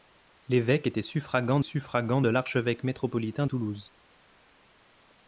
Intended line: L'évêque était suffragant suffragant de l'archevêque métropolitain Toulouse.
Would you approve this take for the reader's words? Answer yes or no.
yes